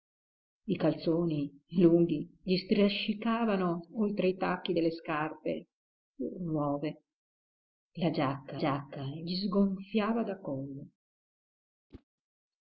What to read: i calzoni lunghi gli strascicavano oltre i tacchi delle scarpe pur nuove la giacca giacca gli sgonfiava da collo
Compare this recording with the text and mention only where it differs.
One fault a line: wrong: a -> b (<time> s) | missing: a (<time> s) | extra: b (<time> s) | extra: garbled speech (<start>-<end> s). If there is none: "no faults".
no faults